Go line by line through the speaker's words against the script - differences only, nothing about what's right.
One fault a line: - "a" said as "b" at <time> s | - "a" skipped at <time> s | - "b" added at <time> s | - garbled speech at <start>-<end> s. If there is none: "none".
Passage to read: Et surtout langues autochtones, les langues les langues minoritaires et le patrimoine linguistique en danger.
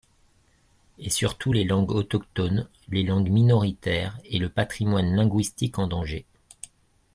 - "les" added at 1.5 s
- "les langues" skipped at 3.3 s